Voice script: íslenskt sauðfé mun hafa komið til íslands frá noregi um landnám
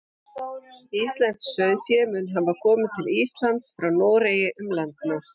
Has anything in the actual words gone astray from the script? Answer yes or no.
no